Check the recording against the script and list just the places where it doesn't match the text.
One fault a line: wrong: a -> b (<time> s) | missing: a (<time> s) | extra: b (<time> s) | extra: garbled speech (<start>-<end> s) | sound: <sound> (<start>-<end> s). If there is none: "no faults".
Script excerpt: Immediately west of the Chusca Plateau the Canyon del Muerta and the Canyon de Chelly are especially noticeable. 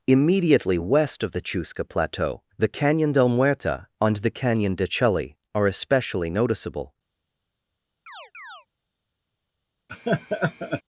sound: chirp (8.1-8.7 s)
sound: laugh (9.9-10.8 s)